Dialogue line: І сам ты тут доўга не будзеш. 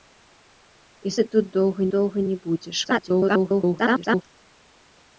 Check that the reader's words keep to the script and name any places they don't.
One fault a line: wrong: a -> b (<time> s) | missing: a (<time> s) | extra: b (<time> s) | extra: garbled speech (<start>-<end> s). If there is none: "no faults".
missing: сам (1.1 s)
extra: доўга (1.9 s)
extra: garbled speech (2.8-4.2 s)